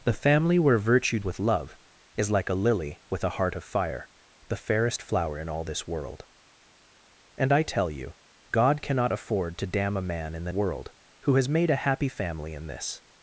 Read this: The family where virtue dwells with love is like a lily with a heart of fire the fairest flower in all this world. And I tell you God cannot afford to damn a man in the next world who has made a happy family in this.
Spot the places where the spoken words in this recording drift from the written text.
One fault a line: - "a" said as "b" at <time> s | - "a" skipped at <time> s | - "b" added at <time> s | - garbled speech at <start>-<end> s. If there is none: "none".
- "dwells" skipped at 1.2 s
- "next" skipped at 10.5 s